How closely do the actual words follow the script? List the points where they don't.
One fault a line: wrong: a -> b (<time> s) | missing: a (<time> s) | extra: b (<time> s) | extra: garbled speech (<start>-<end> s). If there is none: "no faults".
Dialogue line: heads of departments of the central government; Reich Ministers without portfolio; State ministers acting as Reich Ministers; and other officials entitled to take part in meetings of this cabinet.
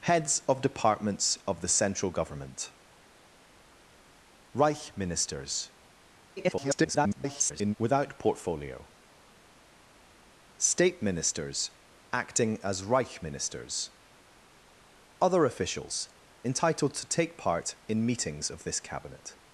extra: garbled speech (6.4-7.7 s)
missing: and (13.9 s)